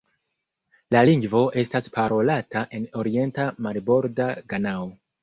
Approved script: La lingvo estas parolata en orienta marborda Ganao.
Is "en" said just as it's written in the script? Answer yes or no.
yes